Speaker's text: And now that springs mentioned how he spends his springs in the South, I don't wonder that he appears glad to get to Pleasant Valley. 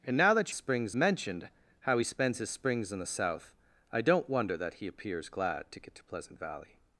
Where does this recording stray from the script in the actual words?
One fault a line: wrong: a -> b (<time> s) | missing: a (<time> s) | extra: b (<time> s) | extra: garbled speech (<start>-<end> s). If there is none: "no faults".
no faults